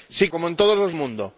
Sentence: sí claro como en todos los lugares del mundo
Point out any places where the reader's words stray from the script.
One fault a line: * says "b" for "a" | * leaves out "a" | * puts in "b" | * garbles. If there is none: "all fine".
* leaves out "claro"
* leaves out "lugares del"